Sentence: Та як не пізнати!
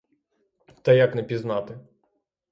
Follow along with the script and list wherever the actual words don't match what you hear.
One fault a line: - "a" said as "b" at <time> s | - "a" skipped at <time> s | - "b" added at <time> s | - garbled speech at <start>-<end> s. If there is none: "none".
none